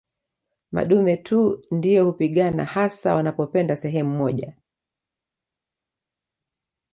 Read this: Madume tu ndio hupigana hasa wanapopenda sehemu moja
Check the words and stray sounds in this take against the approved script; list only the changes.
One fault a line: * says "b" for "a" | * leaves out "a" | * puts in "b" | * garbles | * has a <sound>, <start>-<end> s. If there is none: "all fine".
all fine